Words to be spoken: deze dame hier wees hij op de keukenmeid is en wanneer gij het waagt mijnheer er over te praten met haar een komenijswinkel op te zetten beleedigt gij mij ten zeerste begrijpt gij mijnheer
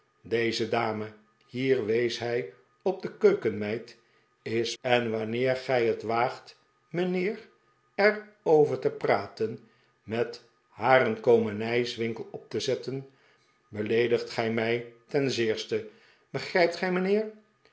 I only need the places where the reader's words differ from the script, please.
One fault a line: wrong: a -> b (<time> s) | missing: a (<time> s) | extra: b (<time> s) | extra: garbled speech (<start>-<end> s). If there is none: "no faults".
no faults